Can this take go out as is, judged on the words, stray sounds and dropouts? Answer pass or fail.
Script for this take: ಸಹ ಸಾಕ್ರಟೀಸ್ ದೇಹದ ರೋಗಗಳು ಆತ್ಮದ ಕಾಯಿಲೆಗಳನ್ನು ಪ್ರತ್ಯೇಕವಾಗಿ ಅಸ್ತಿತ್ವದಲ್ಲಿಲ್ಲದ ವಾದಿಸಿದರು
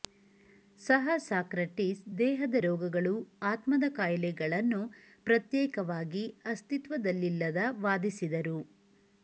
pass